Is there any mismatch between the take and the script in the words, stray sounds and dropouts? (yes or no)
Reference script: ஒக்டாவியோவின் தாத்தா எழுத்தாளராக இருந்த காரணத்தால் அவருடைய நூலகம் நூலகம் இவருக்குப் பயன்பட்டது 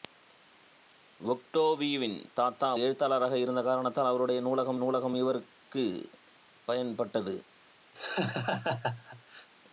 yes